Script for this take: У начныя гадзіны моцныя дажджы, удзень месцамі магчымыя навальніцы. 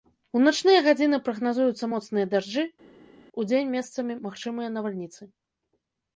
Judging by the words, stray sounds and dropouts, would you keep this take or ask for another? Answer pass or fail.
fail